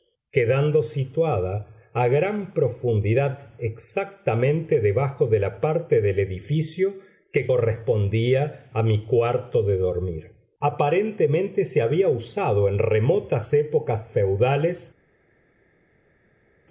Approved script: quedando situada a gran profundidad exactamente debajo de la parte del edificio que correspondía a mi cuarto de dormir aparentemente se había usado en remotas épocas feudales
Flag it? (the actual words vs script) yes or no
no